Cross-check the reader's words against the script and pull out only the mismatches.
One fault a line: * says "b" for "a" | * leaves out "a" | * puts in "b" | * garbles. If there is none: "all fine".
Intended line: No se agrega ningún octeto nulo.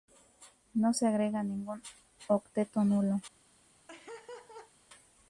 all fine